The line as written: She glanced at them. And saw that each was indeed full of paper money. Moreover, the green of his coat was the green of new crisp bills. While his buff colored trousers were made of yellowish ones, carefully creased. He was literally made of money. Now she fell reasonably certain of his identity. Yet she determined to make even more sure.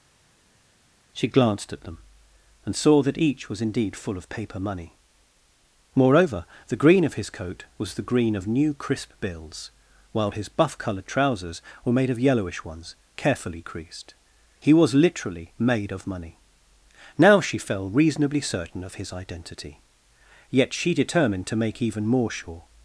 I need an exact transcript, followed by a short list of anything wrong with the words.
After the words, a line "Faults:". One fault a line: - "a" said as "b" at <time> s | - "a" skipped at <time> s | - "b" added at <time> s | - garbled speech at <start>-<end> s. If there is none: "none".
She glanced at them. And saw that each was indeed full of paper money. Moreover, the green of his coat was the green of new crisp bills. While his buff colored trousers were made of yellowish ones, carefully creased. He was literally made of money. Now she fell reasonably certain of his identity. Yet she determined to make even more sure.
Faults:
none